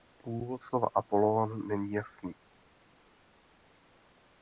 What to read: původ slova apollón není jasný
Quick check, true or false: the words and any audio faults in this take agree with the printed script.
true